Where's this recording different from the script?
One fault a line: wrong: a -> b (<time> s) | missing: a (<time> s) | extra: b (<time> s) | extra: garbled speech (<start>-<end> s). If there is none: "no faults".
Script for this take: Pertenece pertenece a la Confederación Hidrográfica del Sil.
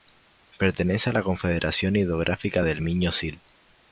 missing: pertenece (1.1 s)
extra: Miño (2.8 s)